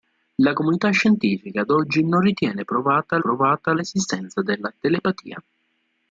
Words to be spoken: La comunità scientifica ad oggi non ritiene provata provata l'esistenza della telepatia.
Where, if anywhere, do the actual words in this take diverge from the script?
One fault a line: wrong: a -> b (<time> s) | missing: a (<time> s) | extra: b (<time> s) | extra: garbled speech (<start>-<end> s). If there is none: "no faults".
no faults